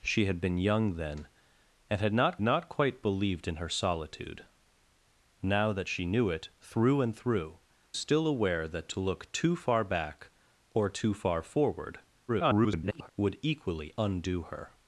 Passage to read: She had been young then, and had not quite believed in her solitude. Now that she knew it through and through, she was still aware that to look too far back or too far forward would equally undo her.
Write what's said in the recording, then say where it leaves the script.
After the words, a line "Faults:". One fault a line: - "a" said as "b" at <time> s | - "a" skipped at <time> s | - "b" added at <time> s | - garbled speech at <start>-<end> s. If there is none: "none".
She had been young then, and had not not quite believed in her solitude. Now that she knew it through and through, still aware that to look too far back or too far forward [garbled] would equally undo her.
Faults:
- "not" added at 2.4 s
- "she was" skipped at 7.6 s
- garbled speech at 12.3-13.1 s